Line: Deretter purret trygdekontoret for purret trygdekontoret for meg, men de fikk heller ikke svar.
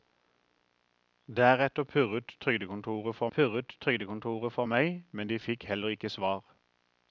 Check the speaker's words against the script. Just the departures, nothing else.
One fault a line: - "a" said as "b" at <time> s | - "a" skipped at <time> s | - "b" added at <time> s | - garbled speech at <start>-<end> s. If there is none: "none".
none